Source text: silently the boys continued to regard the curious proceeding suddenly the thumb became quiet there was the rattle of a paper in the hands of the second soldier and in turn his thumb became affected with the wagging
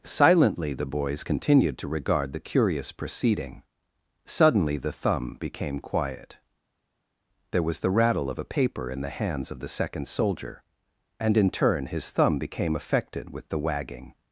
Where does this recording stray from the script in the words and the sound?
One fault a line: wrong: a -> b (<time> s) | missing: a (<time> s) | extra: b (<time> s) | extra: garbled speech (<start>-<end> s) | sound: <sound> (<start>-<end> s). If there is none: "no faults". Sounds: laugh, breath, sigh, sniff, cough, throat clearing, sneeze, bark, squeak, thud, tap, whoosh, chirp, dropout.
no faults